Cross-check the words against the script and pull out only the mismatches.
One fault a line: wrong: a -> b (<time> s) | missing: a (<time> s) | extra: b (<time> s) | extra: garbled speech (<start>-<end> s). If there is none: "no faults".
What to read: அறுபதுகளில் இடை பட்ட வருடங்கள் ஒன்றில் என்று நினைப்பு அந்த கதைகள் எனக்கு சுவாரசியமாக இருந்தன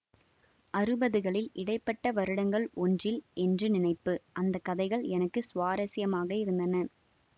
no faults